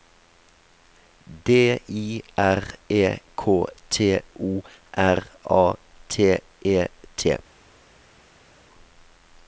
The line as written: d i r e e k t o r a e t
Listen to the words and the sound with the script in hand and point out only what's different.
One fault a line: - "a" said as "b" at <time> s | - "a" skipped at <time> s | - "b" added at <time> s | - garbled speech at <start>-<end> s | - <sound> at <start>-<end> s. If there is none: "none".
- "e" skipped at 3.0 s
- "t" added at 6.1 s